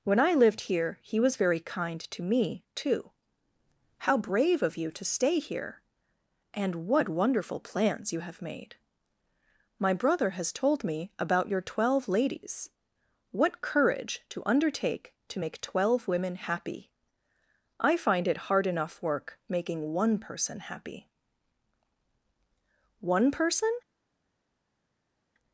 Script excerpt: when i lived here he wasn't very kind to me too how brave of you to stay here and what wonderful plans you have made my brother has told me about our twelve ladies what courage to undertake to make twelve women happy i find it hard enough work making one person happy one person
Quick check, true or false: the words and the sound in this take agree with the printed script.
false